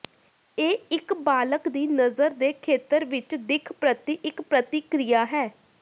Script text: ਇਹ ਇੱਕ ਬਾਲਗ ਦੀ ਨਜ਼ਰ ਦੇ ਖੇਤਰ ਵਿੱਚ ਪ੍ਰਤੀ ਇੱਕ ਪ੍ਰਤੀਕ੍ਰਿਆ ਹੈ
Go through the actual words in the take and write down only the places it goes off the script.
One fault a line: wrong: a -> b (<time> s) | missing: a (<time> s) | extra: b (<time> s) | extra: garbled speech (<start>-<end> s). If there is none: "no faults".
extra: ਦਿੱਖ (3.4 s)